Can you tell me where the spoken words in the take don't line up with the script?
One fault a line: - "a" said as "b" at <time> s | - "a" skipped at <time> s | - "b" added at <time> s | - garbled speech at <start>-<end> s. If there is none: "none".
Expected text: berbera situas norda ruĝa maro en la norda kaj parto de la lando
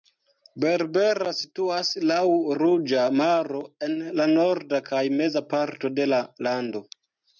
- "norda" said as "laŭ" at 2.1 s
- "meza" added at 5.2 s